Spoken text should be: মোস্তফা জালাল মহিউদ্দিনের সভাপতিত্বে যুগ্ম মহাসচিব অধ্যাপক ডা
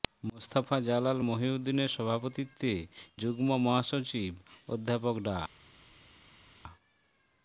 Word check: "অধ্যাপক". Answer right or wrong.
right